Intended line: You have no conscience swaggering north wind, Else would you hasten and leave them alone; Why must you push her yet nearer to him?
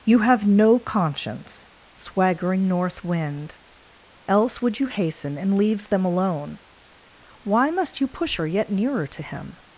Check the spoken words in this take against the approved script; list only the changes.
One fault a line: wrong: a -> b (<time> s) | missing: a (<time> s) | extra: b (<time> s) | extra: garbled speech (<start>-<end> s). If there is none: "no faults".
wrong: leave -> leaves (5.6 s)